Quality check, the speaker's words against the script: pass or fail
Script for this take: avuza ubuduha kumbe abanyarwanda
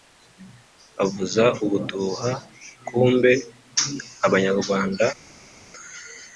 pass